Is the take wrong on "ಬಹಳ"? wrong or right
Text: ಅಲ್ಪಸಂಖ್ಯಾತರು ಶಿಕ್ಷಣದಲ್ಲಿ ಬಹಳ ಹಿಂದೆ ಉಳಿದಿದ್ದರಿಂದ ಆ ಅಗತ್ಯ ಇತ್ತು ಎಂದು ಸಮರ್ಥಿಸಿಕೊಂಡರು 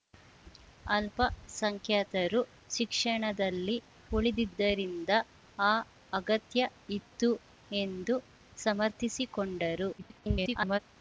wrong